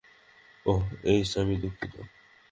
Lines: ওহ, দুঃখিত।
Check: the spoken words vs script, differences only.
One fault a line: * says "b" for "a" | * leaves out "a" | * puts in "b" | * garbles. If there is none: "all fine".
* puts in "এইস আমি"